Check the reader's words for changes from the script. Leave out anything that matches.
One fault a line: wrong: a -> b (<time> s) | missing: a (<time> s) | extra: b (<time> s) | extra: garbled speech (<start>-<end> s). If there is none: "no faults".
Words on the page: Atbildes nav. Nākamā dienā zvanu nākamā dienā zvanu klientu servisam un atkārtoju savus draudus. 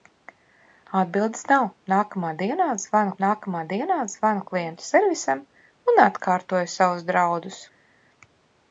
no faults